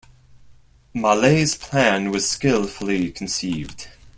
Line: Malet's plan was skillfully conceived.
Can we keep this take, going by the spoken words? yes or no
yes